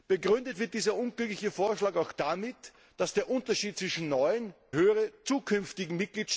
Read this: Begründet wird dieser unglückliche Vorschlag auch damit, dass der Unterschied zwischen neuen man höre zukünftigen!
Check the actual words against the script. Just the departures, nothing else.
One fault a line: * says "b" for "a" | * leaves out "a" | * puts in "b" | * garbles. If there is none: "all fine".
* leaves out "man"